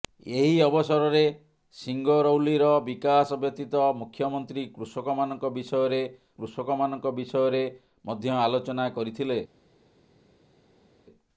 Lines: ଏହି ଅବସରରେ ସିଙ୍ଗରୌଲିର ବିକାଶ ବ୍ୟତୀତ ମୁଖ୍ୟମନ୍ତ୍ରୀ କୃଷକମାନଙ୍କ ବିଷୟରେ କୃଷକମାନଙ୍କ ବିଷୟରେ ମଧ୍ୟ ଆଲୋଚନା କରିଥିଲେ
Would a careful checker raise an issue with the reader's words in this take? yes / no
no